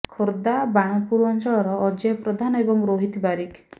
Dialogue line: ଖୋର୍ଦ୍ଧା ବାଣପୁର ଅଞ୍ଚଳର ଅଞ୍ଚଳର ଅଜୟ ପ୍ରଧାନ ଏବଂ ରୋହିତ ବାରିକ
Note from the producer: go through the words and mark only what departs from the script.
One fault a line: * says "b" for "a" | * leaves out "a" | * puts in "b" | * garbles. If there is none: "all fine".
* leaves out "ଅଞ୍ଚଳର"